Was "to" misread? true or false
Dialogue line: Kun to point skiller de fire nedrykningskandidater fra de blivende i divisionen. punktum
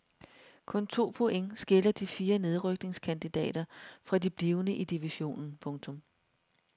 false